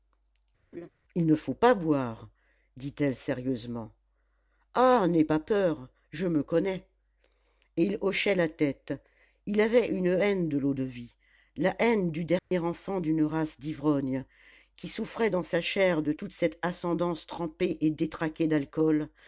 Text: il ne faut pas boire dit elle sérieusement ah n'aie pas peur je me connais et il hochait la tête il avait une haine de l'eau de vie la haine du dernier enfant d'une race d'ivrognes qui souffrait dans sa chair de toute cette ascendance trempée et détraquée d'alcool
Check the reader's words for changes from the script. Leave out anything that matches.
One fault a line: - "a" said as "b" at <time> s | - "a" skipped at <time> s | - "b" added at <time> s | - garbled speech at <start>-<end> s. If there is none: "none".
none